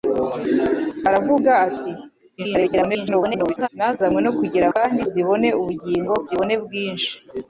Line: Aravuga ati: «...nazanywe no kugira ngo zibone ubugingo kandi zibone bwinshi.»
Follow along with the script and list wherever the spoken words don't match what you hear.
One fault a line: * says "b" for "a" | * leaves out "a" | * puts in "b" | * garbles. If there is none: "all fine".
* garbles
* says "kandi" for "ngo"
* leaves out "kandi"